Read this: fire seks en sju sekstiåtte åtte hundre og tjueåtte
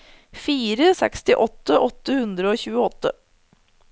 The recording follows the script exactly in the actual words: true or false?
false